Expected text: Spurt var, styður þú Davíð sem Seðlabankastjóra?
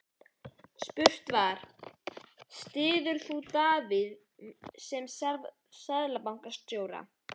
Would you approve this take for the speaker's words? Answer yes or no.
yes